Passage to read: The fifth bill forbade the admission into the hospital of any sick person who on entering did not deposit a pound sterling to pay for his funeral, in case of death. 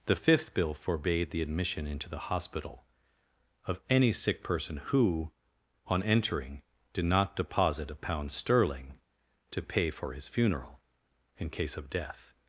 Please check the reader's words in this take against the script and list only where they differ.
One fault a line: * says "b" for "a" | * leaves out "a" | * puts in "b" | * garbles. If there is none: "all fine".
all fine